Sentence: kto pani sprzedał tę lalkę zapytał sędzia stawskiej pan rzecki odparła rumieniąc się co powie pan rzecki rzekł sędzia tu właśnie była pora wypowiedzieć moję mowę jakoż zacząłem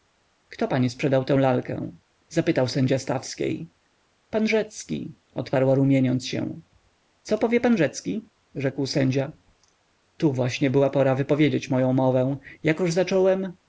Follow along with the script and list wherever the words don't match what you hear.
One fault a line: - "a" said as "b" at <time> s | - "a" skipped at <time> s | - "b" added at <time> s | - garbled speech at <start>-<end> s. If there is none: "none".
none